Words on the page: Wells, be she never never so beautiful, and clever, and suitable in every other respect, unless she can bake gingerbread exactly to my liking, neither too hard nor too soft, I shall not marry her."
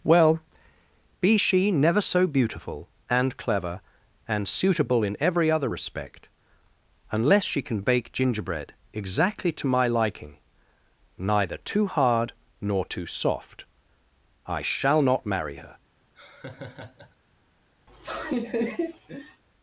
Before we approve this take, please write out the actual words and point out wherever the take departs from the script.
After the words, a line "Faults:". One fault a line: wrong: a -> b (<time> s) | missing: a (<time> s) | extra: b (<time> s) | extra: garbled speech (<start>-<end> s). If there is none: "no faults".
Well, be she never so beautiful, and clever, and suitable in every other respect, unless she can bake gingerbread exactly to my liking, neither too hard nor too soft, I shall not marry her."
Faults:
wrong: Wells -> Well (0.0 s)
missing: never (2.0 s)